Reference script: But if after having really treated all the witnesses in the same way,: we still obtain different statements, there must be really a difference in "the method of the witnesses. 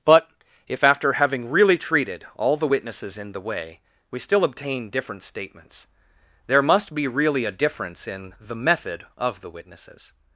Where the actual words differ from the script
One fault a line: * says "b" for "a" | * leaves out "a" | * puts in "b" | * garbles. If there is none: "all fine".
* leaves out "same"